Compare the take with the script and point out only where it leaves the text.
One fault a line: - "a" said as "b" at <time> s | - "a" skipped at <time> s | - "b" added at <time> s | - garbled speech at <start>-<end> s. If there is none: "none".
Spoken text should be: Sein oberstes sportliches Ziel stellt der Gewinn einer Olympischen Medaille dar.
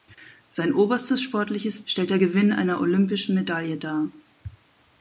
- "Ziel" skipped at 1.9 s